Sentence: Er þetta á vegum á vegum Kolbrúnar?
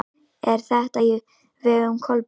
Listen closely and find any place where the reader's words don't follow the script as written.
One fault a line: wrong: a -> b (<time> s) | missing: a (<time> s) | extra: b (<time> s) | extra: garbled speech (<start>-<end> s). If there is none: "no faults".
missing: á vegum (2.0 s)